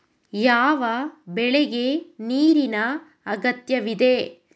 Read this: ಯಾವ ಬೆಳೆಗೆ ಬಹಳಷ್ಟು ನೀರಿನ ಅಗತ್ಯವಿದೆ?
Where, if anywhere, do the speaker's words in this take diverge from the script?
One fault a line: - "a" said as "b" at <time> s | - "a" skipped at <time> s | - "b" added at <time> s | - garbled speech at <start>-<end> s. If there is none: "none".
- "ಬಹಳಷ್ಟು" skipped at 2.2 s